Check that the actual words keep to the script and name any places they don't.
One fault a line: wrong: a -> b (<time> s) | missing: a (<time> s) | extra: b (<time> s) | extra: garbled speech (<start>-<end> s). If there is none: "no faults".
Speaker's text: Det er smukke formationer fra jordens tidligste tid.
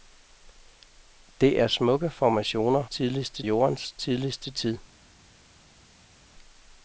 wrong: fra -> tidligste (2.8 s)